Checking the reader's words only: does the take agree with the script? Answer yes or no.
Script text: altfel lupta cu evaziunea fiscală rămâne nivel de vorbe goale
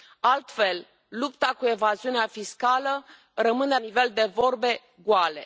yes